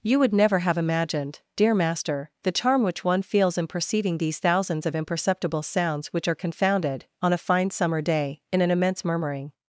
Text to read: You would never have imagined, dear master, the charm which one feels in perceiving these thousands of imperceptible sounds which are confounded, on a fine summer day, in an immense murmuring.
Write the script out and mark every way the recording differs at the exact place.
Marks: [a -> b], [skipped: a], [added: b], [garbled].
You would never have imagined, dear master, the charm which one feels in perceiving these thousands of imperceptible sounds which are confounded, on a fine summer day, in an immense murmuring.